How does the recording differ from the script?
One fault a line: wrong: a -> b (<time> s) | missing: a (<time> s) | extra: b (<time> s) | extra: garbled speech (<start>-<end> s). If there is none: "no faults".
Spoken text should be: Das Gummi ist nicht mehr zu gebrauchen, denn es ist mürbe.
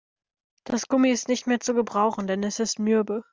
no faults